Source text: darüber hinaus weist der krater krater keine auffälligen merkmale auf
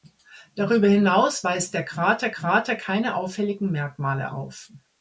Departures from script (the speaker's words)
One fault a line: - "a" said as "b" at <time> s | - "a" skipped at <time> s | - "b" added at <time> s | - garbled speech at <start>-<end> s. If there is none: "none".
none